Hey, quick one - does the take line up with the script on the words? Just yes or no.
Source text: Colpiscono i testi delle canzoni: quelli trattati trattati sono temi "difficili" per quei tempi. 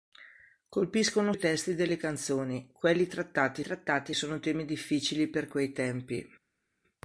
yes